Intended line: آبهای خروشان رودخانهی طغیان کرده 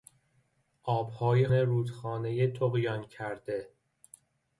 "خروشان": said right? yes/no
no